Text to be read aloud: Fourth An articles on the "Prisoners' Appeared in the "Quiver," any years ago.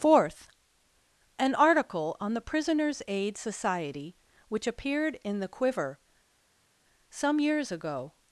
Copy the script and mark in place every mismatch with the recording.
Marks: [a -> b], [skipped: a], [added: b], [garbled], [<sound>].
Fourth An [articles -> article] on the "Prisoners' [added: Aid Society which] Appeared in the "Quiver," [any -> some] years ago.